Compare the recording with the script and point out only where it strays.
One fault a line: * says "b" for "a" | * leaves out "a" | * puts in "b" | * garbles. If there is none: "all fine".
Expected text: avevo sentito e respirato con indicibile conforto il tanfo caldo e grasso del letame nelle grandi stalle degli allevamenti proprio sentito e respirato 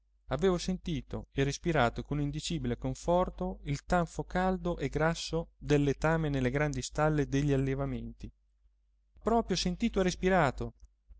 all fine